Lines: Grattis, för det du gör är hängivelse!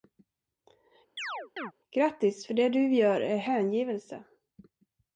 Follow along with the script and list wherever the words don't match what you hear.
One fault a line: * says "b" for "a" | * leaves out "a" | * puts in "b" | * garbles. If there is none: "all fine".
all fine